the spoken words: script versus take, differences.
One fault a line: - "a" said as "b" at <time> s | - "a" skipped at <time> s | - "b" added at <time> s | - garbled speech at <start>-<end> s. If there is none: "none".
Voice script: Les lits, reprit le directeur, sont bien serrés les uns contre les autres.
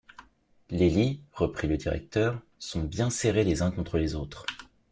none